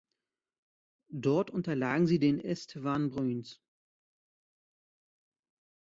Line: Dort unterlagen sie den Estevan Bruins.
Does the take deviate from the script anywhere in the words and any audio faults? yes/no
no